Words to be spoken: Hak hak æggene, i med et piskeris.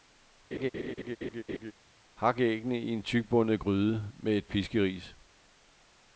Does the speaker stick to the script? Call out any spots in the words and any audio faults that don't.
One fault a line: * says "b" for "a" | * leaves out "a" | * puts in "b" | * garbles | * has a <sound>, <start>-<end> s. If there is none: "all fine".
* has a laugh, 0.5-1.7 s
* leaves out "hak"
* puts in "en tykbundet gryde"